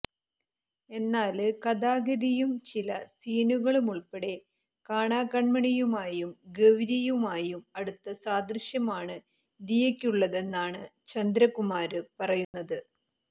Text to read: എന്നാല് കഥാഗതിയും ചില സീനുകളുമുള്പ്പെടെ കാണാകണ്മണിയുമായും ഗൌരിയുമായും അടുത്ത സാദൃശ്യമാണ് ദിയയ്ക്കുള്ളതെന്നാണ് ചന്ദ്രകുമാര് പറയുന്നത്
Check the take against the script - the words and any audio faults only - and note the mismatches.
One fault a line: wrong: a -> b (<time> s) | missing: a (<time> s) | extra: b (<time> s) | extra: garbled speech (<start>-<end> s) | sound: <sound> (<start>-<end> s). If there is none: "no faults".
sound: dropout (12.4-12.5 s)